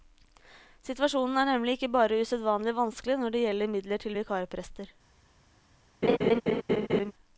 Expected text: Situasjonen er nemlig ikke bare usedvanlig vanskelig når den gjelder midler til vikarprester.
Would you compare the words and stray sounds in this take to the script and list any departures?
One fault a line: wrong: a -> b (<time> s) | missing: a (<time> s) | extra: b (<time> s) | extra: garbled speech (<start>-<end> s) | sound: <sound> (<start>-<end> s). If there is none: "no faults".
wrong: den -> det (3.4 s)
sound: laugh (6.0-7.1 s)